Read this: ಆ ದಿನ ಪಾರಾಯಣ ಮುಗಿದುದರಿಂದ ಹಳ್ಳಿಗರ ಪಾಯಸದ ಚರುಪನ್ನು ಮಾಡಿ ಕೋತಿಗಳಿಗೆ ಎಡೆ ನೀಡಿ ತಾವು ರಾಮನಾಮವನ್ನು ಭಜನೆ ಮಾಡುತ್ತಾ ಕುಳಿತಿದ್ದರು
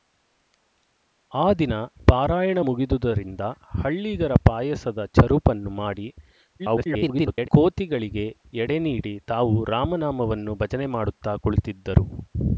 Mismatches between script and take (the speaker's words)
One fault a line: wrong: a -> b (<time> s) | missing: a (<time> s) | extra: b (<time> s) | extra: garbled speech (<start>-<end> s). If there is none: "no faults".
extra: garbled speech (6.6-7.5 s)